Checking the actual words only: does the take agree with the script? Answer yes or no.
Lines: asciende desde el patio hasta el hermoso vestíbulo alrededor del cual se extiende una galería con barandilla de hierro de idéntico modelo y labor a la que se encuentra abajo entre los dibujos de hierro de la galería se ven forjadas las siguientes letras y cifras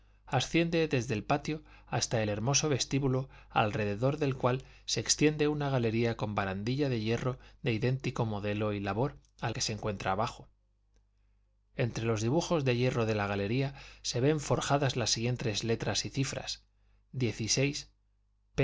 no